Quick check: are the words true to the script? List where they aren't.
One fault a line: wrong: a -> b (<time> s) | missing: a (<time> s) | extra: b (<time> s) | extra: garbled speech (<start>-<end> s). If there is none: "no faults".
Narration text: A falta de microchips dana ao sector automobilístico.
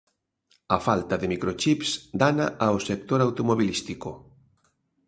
no faults